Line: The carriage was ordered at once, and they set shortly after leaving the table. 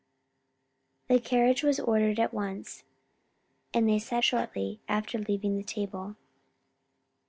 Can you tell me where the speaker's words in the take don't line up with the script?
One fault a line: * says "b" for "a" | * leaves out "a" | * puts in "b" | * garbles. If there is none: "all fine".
all fine